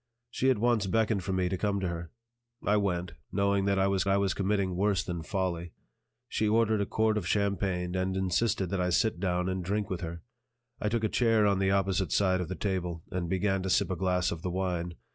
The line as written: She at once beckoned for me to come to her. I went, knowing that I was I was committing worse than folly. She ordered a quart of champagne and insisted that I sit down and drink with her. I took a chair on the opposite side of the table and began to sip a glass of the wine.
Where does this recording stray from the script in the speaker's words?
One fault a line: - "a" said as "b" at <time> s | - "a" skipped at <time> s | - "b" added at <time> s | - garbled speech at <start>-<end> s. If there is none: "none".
none